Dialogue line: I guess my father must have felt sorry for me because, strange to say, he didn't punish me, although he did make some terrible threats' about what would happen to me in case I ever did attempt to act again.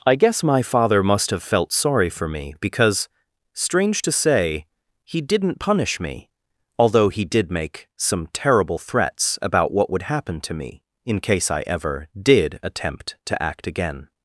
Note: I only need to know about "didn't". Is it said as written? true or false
true